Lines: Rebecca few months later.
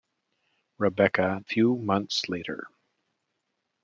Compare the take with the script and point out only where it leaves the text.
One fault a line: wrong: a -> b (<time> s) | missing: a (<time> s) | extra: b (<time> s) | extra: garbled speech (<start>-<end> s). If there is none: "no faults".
no faults